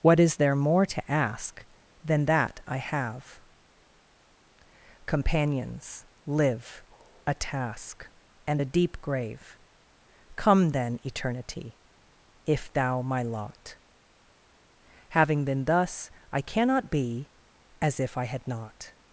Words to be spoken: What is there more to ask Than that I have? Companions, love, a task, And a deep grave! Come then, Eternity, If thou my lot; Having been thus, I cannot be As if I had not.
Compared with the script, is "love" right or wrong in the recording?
wrong